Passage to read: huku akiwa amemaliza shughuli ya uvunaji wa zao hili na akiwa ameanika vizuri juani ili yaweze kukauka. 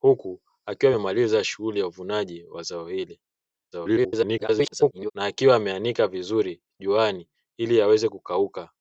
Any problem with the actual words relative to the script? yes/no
yes